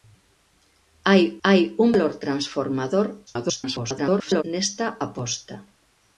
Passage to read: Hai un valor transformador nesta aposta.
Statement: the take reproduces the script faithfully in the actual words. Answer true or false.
false